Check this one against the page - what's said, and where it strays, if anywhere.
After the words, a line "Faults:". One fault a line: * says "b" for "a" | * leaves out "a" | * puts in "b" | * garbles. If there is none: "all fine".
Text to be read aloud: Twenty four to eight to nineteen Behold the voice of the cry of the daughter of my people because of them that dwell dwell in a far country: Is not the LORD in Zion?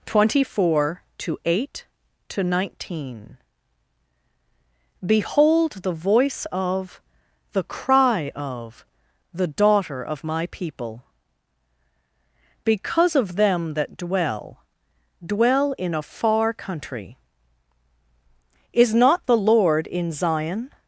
Twenty four to eight to nineteen Behold the voice of the cry of the daughter of my people because of them that dwell dwell in a far country: Is not the LORD in Zion?
Faults:
all fine